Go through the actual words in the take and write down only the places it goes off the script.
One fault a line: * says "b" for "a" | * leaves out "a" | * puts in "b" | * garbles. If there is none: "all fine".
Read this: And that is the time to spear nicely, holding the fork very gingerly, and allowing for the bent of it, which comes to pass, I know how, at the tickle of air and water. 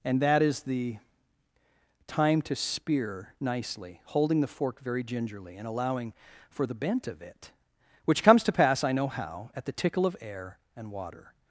all fine